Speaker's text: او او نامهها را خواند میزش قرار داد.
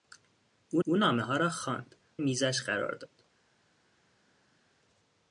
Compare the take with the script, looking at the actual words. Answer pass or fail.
pass